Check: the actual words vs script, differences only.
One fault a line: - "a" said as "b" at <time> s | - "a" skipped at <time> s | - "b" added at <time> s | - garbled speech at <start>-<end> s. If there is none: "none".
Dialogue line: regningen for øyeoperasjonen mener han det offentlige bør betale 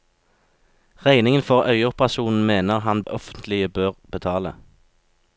- "det" skipped at 3.0 s